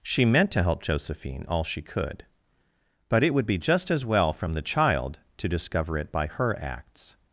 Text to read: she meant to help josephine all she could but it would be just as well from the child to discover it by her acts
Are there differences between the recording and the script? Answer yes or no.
no